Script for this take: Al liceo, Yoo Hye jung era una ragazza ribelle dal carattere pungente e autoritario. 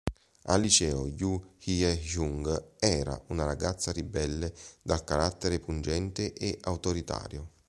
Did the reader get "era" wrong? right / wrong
right